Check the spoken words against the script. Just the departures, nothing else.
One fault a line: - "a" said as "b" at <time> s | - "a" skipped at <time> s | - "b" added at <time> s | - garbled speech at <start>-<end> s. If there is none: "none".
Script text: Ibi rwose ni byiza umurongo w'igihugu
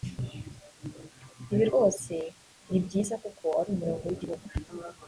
- "kuko ari" added at 3.2 s